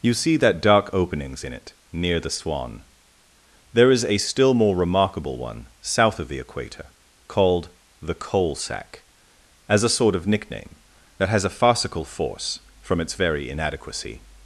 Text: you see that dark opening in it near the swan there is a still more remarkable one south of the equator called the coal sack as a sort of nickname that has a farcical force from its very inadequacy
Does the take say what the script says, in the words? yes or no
no